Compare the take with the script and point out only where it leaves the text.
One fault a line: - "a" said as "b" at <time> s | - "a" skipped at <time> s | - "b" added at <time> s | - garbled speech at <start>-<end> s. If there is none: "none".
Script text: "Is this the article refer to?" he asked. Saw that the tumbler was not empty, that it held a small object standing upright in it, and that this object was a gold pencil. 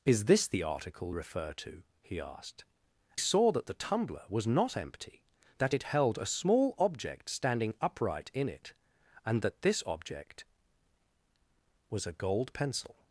none